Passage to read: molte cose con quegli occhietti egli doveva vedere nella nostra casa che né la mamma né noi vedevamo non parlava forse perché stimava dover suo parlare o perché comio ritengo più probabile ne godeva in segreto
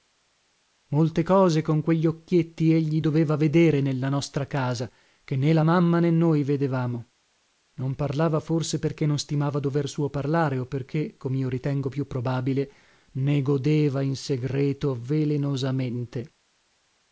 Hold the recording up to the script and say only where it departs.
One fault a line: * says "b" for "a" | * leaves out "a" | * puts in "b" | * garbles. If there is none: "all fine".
* puts in "non"